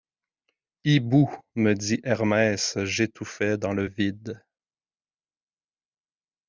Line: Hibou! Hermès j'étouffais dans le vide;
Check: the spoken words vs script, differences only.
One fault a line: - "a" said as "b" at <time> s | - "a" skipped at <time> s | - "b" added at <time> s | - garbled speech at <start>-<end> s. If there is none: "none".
- "me dit" added at 1.5 s